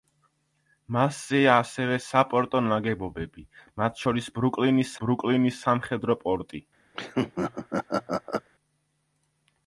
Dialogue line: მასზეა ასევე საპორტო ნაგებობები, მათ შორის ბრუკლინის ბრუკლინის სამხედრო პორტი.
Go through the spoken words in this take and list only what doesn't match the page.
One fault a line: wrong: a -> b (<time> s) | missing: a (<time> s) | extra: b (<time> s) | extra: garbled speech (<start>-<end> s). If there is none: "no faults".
no faults